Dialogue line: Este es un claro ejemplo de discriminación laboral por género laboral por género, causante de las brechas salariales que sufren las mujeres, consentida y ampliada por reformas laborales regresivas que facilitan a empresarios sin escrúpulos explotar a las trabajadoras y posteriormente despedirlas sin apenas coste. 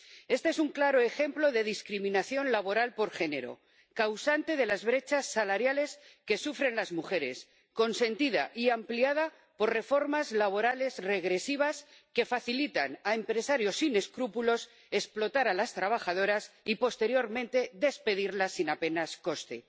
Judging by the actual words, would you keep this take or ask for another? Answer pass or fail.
fail